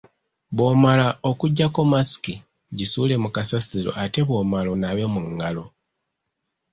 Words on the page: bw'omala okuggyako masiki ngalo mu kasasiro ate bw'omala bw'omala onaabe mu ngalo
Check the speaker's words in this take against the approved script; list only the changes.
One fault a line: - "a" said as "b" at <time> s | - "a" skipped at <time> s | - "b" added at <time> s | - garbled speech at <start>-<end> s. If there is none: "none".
- "ngalo" said as "gisuule" at 2.8 s
- "bw'omala" skipped at 4.7 s